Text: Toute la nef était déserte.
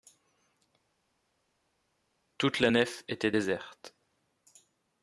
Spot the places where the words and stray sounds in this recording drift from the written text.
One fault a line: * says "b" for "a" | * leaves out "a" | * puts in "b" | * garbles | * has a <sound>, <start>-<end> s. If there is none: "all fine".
all fine